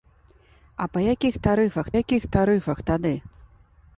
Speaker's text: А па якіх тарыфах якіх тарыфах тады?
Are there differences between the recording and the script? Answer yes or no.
no